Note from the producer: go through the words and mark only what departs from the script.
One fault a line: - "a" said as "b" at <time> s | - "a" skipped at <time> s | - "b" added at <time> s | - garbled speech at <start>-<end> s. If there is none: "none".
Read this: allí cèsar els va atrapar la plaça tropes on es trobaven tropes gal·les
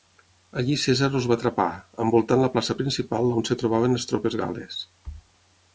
- "envoltant" added at 2.0 s
- "tropes" said as "principal" at 2.8 s
- "les" added at 4.0 s